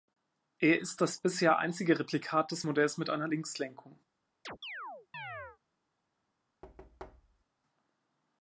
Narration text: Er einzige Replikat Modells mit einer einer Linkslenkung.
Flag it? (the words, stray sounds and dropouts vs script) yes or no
yes